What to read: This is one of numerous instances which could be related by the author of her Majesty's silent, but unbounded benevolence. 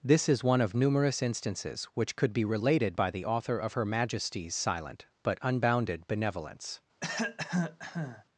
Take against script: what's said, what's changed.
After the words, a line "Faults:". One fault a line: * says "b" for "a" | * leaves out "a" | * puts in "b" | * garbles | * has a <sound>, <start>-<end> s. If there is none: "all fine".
This is one of numerous instances which could be related by the author of her Majesty's silent, but unbounded benevolence.
Faults:
* has a cough, 7.0-8.2 s